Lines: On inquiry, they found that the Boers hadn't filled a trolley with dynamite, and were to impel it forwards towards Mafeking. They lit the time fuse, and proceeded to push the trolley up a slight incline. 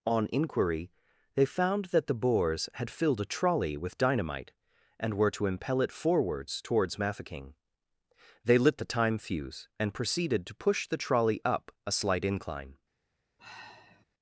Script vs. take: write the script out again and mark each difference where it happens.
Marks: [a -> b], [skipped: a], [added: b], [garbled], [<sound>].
On inquiry, they found that the Boers [hadn't -> had] filled a trolley with dynamite, and were to impel it forwards towards Mafeking. They lit the time fuse, and proceeded to push the trolley up a slight incline. [sigh]